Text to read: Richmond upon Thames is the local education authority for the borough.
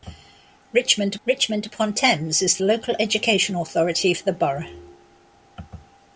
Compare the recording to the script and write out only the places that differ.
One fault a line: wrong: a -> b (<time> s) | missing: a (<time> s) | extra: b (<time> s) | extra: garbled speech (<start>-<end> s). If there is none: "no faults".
extra: richmond (1.3 s)
missing: the (2.6 s)